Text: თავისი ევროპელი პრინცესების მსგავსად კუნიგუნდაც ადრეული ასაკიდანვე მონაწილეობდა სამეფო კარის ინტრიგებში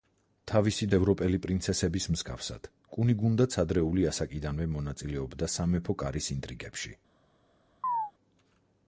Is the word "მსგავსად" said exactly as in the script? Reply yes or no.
yes